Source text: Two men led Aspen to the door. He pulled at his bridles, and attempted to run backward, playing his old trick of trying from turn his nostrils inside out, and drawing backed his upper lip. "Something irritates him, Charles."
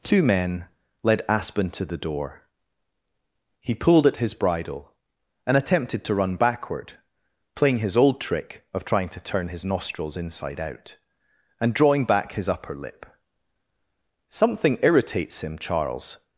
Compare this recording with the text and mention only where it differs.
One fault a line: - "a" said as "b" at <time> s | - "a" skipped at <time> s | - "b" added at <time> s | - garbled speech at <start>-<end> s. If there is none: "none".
- "bridles" said as "bridle" at 4.3 s
- "from" said as "to" at 9.1 s
- "backed" said as "back" at 12.0 s